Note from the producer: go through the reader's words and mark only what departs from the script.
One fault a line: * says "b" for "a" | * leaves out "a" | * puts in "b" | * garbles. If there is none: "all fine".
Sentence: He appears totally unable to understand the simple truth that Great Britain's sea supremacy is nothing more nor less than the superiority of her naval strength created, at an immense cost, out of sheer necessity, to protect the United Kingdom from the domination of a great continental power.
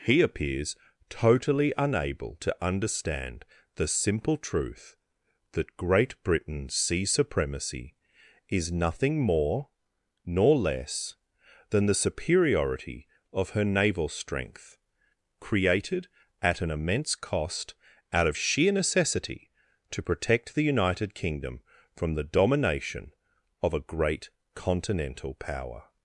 all fine